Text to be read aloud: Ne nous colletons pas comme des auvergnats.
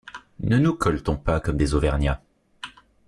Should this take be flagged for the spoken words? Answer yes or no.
no